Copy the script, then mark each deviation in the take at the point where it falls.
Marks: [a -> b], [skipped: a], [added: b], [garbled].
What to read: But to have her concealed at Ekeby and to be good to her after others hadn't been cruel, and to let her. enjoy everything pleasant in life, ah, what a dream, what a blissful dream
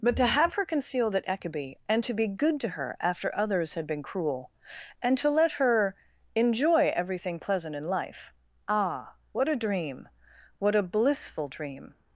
But to have her concealed at Ekeby and to be good to her after others [hadn't -> had] been cruel, and to let her. enjoy everything pleasant in life, ah, what a dream, what a blissful dream